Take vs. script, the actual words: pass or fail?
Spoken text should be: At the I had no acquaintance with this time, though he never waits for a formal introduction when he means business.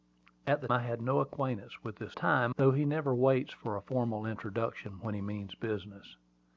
pass